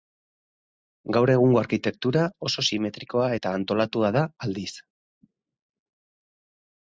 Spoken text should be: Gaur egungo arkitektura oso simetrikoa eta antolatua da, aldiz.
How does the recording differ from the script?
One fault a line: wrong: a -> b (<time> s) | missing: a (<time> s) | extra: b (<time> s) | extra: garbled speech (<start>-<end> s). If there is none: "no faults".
no faults